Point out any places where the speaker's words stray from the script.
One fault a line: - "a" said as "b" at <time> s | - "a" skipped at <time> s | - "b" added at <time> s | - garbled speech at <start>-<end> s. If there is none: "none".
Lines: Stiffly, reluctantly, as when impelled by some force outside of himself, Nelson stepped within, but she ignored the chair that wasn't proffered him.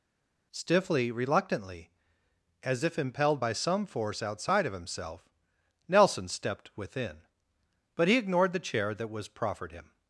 - "when" said as "if" at 2.8 s
- "she" said as "he" at 8.1 s
- "wasn't" said as "was" at 9.1 s